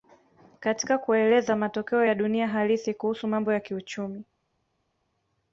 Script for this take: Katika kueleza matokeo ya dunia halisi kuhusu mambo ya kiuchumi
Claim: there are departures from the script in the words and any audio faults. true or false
false